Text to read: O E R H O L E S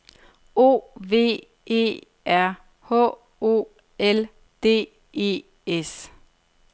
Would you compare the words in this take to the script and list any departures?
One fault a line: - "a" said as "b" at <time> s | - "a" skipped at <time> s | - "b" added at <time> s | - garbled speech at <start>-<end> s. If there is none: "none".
- "V" added at 1.0 s
- "D" added at 4.6 s